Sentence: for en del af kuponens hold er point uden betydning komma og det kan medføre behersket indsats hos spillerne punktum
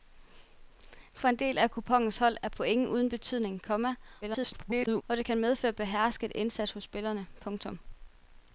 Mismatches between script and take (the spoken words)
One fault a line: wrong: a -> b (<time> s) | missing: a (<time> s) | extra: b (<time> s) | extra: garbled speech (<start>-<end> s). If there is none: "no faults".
extra: garbled speech (4.2-5.0 s)